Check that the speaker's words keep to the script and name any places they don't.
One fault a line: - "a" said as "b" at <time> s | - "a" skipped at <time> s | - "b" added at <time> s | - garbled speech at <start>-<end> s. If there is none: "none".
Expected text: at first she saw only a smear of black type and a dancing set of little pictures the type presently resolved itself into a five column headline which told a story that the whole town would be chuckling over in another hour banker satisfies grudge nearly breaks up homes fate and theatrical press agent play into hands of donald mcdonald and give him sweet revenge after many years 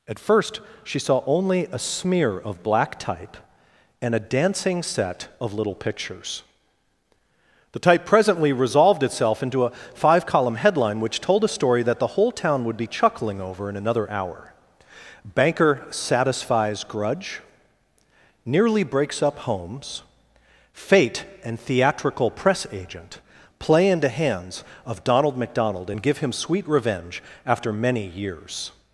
none